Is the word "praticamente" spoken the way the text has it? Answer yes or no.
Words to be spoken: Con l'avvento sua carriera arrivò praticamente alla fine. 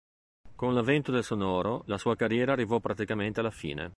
yes